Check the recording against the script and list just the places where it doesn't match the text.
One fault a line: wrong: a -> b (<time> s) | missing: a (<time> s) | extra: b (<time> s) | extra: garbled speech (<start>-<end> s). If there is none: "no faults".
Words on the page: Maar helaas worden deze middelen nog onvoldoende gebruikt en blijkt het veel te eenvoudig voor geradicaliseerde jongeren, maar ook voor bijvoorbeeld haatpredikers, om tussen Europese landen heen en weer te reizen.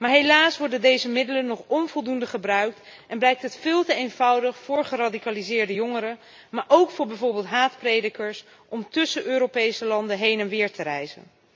no faults